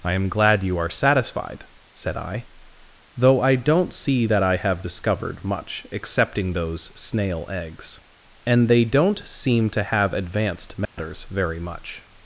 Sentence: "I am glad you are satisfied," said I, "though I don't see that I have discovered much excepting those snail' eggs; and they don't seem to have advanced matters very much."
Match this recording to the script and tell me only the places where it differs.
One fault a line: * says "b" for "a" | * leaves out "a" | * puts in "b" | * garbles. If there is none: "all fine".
all fine